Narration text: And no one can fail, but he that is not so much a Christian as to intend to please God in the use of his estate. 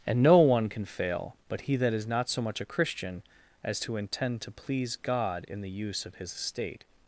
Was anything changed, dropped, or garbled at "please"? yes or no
no